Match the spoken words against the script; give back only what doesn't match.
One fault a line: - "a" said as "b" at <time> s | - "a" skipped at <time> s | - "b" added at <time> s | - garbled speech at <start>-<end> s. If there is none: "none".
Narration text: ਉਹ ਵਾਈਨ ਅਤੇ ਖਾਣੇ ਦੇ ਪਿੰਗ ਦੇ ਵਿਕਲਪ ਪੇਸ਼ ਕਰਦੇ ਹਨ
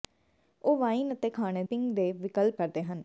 - "ਦੇ" skipped at 1.6 s
- "ਪੇਸ਼" skipped at 2.6 s